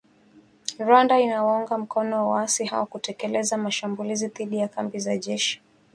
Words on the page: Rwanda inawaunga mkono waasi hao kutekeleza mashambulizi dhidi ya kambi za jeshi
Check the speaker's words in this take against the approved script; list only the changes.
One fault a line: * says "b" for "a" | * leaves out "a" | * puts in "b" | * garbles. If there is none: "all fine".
all fine